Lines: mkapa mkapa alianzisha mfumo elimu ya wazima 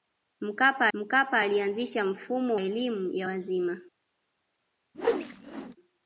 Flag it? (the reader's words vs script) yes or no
no